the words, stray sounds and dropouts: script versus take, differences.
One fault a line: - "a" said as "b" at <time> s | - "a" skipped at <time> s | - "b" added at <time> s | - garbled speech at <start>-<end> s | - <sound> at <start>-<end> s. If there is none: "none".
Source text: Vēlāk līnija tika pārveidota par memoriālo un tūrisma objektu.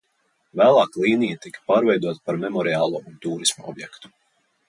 none